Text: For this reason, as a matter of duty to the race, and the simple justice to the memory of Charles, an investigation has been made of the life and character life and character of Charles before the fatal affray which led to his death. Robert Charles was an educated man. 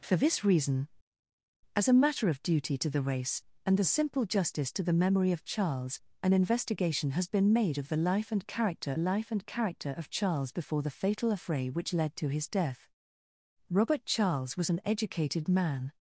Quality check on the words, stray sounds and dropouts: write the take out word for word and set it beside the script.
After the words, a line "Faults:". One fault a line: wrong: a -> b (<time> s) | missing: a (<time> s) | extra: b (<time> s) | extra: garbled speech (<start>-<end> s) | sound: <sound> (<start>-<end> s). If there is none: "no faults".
For this reason, as a matter of duty to the race, and the simple justice to the memory of Charles, an investigation has been made of the life and character life and character of Charles before the fatal affray which led to his death. Robert Charles was an educated man.
Faults:
no faults